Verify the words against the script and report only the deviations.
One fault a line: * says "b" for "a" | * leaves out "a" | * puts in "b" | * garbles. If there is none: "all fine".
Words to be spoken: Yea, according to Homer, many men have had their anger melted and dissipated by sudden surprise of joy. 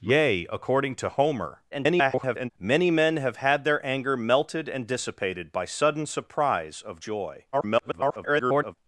* garbles
* garbles